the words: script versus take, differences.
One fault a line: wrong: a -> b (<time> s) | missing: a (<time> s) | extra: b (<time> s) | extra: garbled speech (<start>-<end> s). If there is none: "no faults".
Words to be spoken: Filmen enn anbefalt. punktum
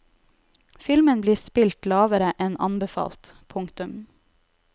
extra: blir spilt lavere (1.2 s)